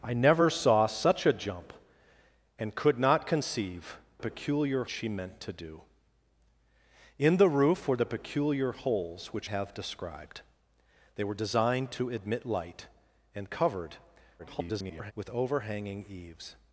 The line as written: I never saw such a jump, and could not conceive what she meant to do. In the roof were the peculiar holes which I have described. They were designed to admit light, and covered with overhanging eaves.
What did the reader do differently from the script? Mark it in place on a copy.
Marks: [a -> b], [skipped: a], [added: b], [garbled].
I never saw such a jump, and could not conceive [what -> peculiar] she meant to do. In the roof were the peculiar holes which [skipped: I] have described. They were designed to admit light, and covered [garbled] with overhanging eaves.